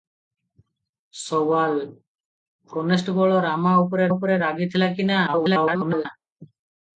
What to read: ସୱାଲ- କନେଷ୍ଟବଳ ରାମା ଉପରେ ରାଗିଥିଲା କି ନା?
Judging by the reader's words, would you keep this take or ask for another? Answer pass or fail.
fail